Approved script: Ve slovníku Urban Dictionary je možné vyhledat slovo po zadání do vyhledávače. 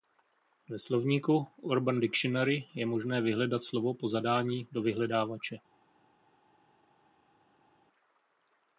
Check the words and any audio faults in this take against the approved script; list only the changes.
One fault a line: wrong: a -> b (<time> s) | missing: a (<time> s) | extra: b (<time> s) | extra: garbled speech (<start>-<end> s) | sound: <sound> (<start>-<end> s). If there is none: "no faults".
no faults